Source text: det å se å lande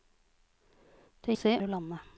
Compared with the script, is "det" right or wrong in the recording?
right